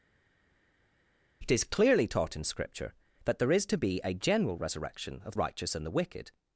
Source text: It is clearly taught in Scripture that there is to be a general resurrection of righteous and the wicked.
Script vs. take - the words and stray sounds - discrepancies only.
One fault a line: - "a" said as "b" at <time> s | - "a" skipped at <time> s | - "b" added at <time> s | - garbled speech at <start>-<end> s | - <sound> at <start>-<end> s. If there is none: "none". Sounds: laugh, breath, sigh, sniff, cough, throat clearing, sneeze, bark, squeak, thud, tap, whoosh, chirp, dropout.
none